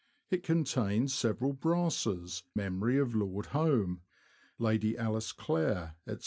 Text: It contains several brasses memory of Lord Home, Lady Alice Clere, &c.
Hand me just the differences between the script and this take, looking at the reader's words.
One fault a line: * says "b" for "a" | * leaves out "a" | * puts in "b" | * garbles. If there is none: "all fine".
all fine